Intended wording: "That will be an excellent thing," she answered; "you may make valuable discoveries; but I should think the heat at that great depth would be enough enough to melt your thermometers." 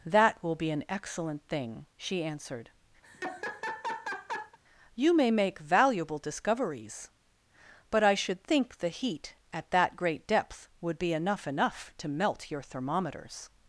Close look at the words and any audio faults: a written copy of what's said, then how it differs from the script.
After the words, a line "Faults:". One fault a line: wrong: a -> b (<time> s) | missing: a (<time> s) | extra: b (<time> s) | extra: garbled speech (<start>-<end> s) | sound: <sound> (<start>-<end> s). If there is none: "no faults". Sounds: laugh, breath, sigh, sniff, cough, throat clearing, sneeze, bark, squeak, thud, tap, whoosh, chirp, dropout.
"That will be an excellent thing," she answered; "you may make valuable discoveries; but I should think the heat at that great depth would be enough enough to melt your thermometers."
Faults:
sound: laugh (3.0-4.6 s)